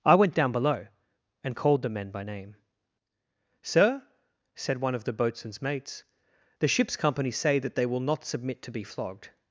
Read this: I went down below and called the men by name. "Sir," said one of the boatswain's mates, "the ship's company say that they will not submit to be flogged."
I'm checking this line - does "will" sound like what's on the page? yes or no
yes